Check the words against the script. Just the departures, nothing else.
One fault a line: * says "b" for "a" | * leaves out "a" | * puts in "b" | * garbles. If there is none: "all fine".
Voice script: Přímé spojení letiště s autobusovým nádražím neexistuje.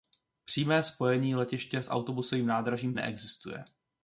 all fine